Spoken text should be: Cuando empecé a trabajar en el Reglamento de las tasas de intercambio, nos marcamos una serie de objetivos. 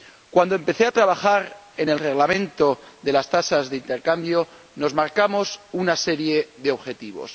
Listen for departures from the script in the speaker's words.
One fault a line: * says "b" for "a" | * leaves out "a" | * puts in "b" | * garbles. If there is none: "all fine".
all fine